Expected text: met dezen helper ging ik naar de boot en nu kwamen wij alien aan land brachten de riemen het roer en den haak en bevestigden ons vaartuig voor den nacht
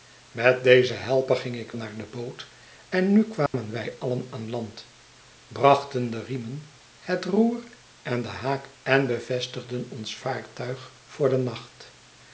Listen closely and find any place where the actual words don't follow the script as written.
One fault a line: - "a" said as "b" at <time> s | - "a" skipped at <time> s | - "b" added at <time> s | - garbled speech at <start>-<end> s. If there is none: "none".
none